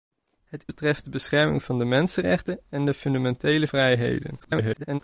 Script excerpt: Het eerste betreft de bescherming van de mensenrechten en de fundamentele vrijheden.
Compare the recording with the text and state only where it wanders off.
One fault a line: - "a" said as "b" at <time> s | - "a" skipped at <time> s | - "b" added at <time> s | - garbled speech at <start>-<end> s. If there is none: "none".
- "eerste" skipped at 0.7 s
- garbled speech at 4.4-5.0 s